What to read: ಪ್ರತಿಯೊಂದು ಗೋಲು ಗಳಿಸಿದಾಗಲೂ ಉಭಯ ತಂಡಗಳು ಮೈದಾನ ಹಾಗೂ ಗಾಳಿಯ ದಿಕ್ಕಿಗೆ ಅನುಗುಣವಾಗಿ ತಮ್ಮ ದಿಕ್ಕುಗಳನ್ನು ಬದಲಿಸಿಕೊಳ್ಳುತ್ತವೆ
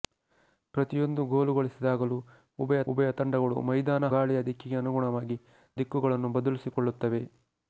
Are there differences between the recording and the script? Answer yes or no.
yes